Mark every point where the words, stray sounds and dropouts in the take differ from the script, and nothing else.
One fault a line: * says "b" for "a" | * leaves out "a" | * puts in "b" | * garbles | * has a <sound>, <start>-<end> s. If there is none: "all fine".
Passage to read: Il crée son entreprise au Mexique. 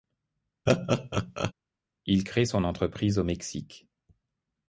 * has a laugh, 0.7-1.5 s